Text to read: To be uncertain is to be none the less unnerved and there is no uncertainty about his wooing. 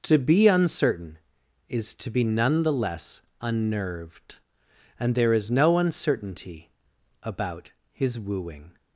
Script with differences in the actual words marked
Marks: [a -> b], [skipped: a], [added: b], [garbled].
To be uncertain is to be none the less unnerved and there is no uncertainty about his wooing.